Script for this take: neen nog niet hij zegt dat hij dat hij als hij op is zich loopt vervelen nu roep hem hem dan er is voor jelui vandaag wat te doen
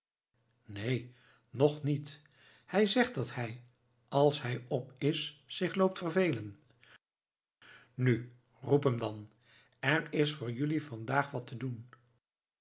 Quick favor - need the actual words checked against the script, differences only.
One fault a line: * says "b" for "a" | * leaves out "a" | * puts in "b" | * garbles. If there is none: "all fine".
* leaves out "dat hij"
* leaves out "hem"